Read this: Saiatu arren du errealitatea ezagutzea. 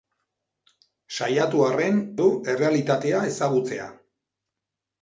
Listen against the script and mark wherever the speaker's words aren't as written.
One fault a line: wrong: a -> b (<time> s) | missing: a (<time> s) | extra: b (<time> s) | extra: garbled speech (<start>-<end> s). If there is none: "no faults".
no faults